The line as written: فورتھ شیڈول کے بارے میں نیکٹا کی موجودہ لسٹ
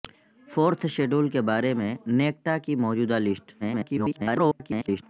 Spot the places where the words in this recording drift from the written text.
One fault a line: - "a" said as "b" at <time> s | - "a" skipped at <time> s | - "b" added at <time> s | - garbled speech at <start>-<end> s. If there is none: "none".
- garbled speech at 3.6-5.0 s